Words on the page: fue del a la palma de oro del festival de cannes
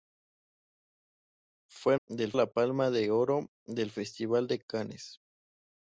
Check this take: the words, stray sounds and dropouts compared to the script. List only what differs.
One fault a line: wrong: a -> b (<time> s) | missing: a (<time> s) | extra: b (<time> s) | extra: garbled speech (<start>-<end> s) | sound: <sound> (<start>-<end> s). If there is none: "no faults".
no faults